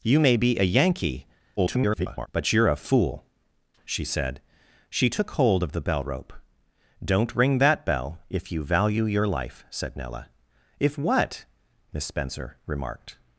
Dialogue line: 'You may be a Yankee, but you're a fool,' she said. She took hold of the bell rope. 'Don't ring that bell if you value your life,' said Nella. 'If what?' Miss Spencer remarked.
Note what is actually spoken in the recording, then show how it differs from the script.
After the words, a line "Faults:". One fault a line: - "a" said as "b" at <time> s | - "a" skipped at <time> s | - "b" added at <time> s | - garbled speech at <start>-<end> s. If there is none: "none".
'You may be a Yankee, [garbled] but you're a fool,' she said. She took hold of the bell rope. 'Don't ring that bell if you value your life,' said Nella. 'If what?' Miss Spencer remarked.
Faults:
- garbled speech at 1.6-2.3 s